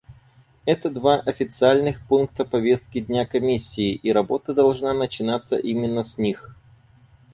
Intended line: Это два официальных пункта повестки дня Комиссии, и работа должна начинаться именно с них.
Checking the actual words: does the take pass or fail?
pass